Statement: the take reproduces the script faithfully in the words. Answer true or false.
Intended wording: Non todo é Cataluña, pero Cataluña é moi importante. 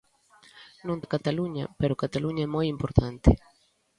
false